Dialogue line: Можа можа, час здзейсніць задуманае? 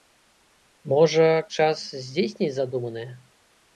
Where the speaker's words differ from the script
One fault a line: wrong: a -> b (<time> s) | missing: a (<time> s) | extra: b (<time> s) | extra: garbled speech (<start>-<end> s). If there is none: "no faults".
missing: можа (1.3 s)